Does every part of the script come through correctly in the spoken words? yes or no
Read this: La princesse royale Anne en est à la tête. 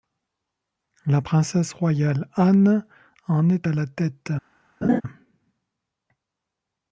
yes